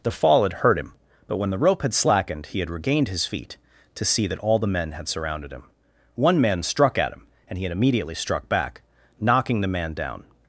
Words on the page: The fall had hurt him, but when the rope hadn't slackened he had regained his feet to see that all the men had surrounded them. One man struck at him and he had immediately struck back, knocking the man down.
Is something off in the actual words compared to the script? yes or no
yes